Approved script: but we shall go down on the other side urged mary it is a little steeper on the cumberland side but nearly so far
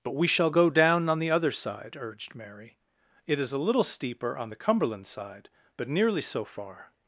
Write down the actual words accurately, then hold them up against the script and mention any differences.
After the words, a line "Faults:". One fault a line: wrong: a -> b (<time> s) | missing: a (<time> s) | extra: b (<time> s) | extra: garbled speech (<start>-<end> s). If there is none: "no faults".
but we shall go down on the other side urged mary it is a little steeper on the cumberland side but nearly so far
Faults:
no faults